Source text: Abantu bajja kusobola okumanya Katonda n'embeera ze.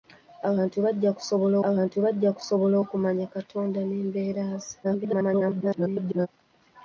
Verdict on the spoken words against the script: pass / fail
fail